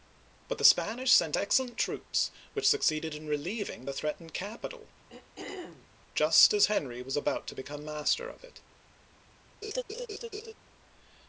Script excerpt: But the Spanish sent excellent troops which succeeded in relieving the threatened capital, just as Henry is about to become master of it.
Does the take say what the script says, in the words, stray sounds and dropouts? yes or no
no